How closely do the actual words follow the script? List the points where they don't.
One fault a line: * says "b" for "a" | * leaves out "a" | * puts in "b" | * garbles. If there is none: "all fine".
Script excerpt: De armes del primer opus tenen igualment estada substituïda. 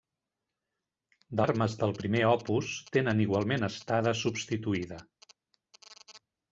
all fine